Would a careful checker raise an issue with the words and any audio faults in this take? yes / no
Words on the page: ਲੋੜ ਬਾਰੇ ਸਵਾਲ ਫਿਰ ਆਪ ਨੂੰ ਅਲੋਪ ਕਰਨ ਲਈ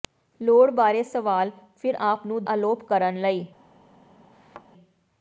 yes